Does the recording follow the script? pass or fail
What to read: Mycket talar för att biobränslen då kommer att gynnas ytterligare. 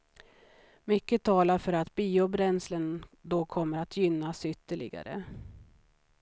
pass